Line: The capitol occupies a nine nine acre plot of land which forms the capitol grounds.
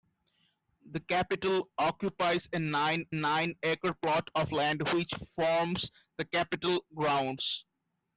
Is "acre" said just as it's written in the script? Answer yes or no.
yes